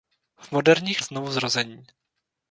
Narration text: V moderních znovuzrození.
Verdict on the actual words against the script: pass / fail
pass